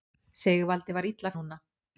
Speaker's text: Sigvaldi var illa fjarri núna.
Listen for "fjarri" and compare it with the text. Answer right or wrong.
wrong